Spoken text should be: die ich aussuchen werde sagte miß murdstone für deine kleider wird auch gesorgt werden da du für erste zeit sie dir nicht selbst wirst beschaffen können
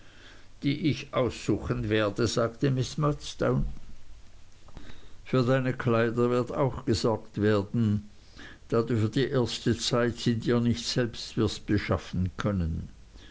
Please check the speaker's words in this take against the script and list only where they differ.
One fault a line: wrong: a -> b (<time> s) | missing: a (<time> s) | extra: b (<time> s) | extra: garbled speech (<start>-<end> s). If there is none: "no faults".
extra: die (9.1 s)